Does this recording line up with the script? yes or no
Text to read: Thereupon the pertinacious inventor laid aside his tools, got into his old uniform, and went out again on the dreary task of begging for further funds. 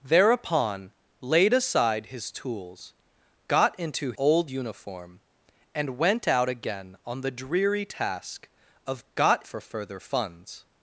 no